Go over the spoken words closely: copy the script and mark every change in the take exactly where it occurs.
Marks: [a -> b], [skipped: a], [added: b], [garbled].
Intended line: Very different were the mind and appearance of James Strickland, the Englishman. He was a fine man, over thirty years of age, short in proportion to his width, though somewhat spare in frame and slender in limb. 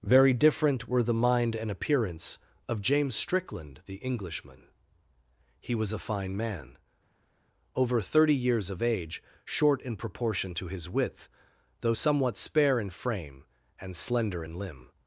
Very different were the mind and appearance of James Strickland, the Englishman. He was a fine man, over thirty years of age, short in proportion to his width, though somewhat spare in frame and slender in limb.